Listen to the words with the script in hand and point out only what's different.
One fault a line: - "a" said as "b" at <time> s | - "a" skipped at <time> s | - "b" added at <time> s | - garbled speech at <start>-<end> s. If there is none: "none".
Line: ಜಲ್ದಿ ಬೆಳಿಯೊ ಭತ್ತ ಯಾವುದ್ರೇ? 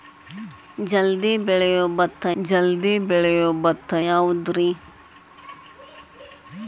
- "ಜಲ್ದಿ ಬೆಳಿಯೊ ಭತ್ತ" added at 2.4 s